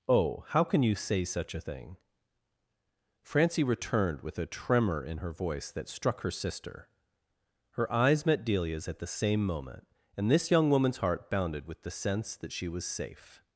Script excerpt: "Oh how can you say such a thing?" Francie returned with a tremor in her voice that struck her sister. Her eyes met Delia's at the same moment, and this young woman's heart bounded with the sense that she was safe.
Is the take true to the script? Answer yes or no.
yes